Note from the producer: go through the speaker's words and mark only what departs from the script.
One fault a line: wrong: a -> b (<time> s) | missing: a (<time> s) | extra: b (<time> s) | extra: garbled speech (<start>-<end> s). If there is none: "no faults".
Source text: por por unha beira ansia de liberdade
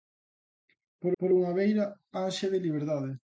no faults